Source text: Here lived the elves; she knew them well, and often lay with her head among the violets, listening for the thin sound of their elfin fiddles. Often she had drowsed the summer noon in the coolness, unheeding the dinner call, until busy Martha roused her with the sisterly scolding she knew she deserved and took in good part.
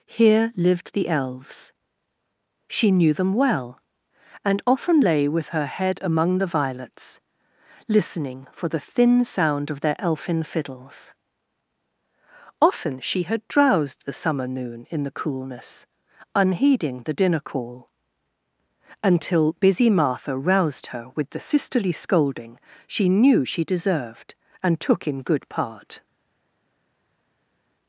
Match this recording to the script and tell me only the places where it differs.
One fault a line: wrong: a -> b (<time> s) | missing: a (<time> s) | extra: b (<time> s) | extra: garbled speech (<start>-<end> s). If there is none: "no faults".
no faults